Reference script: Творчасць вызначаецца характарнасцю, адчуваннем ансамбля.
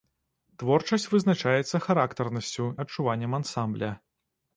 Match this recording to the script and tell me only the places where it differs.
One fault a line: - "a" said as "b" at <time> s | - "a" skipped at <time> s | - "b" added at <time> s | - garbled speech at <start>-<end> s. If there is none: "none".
none